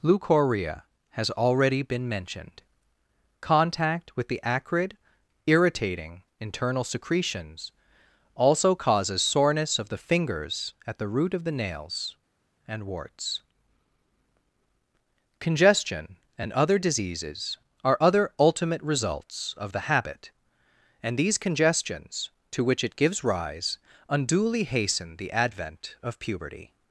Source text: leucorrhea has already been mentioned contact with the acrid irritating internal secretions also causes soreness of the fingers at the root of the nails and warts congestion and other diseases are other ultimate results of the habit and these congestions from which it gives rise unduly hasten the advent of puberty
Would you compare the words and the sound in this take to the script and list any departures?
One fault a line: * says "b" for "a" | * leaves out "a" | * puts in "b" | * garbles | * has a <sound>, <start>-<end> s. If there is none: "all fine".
* says "to" for "from"